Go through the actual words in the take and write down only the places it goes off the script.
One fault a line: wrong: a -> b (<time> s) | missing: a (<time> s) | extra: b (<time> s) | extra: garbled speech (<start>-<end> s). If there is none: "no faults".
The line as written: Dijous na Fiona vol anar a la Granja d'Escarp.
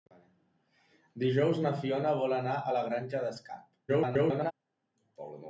extra: garbled speech (3.9-4.5 s)